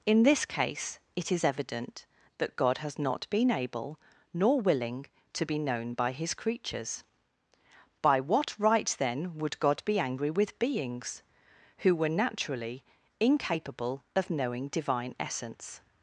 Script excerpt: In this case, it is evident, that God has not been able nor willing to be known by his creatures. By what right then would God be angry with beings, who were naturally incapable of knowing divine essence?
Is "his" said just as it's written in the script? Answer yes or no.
yes